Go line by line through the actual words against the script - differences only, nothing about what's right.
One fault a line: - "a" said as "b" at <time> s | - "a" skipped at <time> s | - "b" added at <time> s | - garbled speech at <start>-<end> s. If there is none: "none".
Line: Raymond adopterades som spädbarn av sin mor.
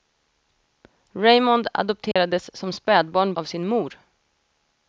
none